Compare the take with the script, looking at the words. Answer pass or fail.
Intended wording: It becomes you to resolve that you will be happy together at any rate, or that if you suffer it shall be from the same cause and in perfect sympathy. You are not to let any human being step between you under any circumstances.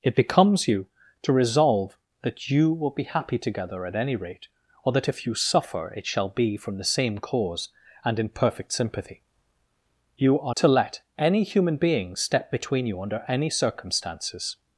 fail